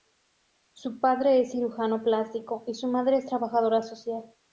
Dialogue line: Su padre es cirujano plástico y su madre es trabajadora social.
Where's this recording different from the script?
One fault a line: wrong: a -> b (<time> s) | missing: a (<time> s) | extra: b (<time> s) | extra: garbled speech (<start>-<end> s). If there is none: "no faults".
no faults